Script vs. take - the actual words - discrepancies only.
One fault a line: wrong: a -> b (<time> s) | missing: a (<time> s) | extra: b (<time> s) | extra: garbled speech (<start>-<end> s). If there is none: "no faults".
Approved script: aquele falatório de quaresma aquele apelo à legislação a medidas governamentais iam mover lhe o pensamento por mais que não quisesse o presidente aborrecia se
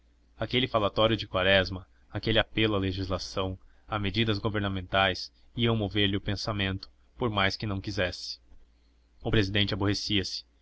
no faults